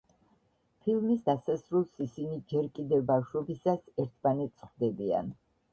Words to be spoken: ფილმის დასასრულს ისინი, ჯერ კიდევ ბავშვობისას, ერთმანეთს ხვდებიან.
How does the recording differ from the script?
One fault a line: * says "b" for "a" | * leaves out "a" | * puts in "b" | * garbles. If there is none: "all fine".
all fine